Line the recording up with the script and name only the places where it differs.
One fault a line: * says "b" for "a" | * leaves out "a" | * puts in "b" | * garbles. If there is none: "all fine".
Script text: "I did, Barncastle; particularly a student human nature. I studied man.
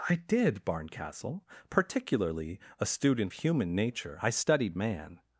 all fine